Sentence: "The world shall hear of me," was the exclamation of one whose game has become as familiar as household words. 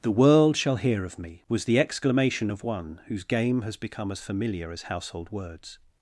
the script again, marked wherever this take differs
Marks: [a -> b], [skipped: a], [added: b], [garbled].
"The world shall hear of me," was the exclamation of one whose game has become as familiar as household words.